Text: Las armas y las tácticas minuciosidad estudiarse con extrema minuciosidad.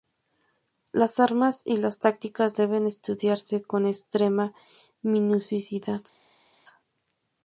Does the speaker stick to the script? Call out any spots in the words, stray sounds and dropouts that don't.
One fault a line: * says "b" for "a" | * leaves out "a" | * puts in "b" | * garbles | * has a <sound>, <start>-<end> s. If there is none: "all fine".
* says "deben" for "minuciosidad"